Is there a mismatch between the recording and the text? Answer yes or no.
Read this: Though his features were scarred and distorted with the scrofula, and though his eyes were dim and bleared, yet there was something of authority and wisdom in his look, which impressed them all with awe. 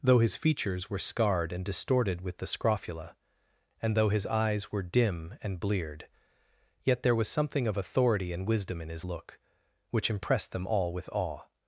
no